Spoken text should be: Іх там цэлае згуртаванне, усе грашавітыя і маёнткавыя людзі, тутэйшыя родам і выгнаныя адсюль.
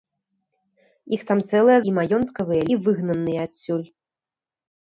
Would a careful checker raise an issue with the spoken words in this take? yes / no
yes